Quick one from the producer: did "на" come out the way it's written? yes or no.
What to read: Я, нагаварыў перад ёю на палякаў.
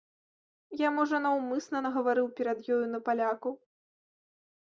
yes